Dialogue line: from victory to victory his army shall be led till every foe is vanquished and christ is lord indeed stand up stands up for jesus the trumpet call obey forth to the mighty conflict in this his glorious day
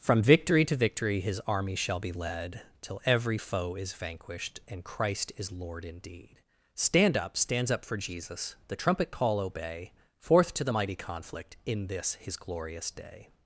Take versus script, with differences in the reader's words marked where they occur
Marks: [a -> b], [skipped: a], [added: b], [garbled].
from victory to victory his army shall be led till every foe is vanquished and christ is lord indeed stand up stands up for jesus the trumpet call obey forth to the mighty conflict in this his glorious day